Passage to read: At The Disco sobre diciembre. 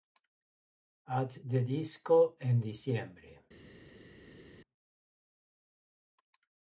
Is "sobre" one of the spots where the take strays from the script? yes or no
yes